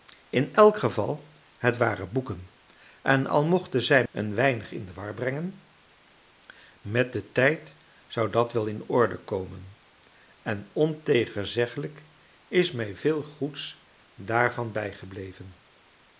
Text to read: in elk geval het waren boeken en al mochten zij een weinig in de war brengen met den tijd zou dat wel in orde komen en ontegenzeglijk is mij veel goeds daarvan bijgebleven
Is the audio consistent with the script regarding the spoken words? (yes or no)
yes